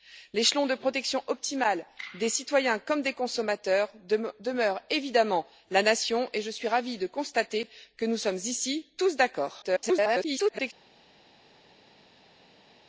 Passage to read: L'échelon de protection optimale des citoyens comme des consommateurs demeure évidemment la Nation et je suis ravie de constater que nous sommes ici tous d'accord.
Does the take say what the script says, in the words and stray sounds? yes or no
no